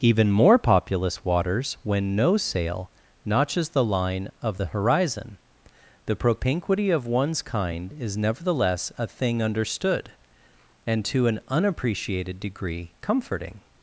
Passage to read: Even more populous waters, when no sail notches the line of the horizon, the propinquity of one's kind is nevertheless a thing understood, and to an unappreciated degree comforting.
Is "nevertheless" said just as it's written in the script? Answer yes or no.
yes